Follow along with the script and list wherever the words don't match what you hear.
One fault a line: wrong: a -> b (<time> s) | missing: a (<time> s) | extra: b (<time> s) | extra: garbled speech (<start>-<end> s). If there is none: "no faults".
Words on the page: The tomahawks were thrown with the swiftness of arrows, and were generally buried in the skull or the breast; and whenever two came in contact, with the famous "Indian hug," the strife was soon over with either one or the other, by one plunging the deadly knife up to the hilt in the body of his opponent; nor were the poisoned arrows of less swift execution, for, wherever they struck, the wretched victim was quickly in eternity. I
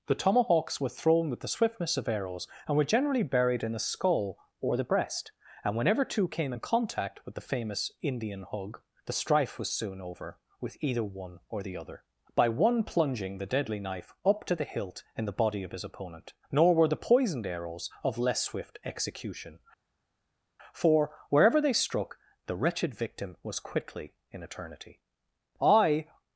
no faults